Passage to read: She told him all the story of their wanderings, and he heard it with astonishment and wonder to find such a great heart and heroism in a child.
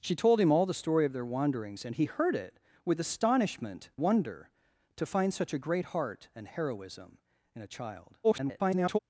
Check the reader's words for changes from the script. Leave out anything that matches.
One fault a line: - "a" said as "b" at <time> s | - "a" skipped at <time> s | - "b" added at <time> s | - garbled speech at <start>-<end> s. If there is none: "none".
- "and" skipped at 3.9 s
- garbled speech at 8.2-9.0 s